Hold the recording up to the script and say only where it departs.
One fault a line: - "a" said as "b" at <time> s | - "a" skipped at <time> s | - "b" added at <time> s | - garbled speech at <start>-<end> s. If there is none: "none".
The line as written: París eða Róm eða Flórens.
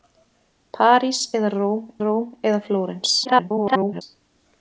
- "Róm" added at 2.0 s
- garbled speech at 3.2-4.0 s